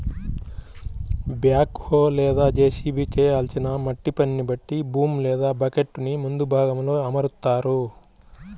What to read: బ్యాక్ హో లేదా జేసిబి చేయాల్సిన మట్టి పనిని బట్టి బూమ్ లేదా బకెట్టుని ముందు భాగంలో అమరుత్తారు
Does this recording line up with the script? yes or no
yes